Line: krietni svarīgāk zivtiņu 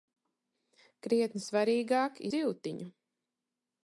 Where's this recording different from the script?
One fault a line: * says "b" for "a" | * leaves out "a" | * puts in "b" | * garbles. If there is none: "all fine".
all fine